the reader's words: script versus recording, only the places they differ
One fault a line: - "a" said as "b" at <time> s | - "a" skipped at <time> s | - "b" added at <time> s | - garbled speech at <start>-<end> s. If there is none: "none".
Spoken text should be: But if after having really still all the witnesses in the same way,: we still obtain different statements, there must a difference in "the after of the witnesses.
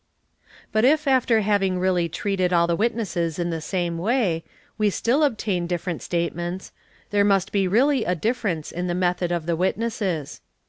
- "still" said as "treated" at 2.1 s
- "be really" added at 7.5 s
- "after" said as "method" at 8.9 s